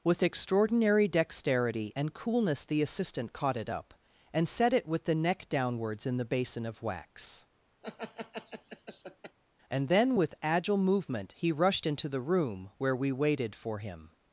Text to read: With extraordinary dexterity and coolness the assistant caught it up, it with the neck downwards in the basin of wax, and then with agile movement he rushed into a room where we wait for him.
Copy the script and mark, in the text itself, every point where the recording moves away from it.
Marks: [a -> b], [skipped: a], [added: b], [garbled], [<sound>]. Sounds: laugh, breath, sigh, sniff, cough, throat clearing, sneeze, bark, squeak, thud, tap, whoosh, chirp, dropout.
With extraordinary dexterity and coolness the assistant caught it up, [added: and set] it with the neck downwards in the basin of wax, [laugh] and then with agile movement he rushed into [a -> the] room where we [wait -> waited] for him.